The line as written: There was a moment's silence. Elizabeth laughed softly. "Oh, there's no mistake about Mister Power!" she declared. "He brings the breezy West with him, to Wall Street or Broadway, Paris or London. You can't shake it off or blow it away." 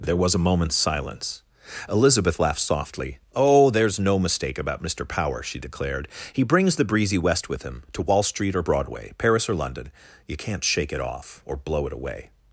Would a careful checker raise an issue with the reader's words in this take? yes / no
no